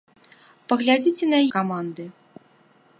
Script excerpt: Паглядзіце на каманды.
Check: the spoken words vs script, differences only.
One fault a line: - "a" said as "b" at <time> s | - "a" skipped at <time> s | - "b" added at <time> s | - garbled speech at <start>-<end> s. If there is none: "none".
none